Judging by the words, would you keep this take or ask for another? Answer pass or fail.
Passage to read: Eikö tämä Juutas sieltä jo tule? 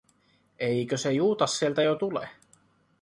fail